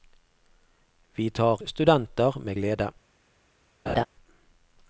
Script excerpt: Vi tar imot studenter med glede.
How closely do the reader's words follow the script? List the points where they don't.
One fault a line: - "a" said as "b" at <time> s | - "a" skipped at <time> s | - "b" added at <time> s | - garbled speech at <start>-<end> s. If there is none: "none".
- "imot" skipped at 1.6 s